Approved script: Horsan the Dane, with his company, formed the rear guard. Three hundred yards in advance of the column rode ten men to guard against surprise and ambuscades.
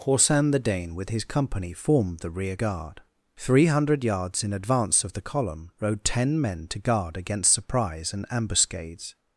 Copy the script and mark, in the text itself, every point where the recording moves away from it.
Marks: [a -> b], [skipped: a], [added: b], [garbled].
Horsan the Dane, with his company, formed the rear guard. Three hundred yards in advance of the column rode ten men to guard against surprise and ambuscades.